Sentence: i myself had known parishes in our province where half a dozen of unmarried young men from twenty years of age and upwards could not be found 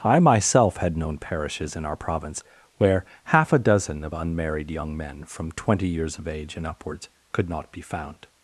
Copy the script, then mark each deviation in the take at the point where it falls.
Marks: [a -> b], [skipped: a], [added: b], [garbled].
i myself had known parishes in our province where half a dozen of unmarried young men from twenty years of age and upwards could not be found